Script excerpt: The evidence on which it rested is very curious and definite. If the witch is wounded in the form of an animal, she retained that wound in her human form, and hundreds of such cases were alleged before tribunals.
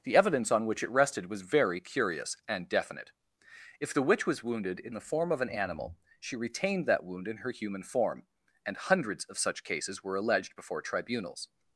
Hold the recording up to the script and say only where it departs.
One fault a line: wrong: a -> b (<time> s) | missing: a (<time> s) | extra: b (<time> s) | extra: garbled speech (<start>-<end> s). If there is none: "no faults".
wrong: is -> was (1.3 s)
wrong: is -> was (4.2 s)